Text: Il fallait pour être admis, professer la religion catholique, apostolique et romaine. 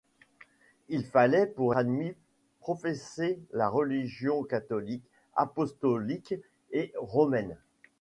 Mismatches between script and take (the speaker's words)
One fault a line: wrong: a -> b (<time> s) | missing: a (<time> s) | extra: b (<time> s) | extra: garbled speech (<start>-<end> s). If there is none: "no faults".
missing: être (1.8 s)